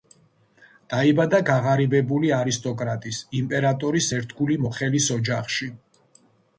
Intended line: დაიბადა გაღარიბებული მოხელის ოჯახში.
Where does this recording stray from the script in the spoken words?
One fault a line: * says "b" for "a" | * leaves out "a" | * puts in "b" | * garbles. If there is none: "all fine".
* puts in "არისტოკრატის იმპერატორის ერთგული"